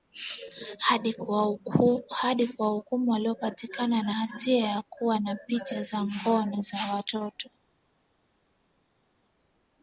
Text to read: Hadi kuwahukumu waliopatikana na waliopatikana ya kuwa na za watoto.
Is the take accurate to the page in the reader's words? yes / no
no